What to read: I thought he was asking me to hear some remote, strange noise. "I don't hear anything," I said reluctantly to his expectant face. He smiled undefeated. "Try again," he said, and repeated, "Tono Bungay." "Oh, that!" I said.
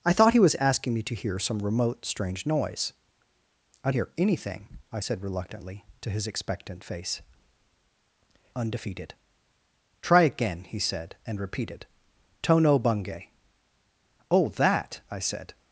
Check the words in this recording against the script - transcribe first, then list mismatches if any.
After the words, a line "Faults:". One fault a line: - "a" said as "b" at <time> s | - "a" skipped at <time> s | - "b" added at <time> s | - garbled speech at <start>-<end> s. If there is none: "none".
I thought he was asking me to hear some remote, strange noise. "I hear anything," I said reluctantly to his expectant face. Undefeated. "Try again," he said, and repeated, "Tono Bungay." "Oh, that!" I said.
Faults:
- "don't" skipped at 3.9 s
- "He smiled" skipped at 7.2 s